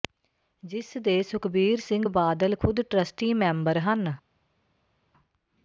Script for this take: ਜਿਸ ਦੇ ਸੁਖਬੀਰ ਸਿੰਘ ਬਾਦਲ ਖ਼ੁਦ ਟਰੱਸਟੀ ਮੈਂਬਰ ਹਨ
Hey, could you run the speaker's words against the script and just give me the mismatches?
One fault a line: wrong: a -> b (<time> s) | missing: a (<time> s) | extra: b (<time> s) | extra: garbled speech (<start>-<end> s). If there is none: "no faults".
no faults